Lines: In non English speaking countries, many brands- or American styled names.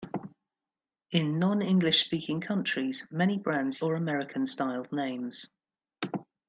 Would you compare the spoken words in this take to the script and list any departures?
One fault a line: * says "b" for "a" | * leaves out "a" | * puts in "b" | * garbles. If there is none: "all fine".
all fine